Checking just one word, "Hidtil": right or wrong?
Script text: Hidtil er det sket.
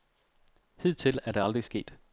right